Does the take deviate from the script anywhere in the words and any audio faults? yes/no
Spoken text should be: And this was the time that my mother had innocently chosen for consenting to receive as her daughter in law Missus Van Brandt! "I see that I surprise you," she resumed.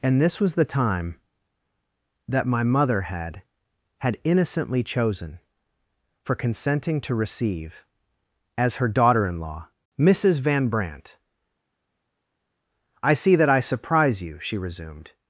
yes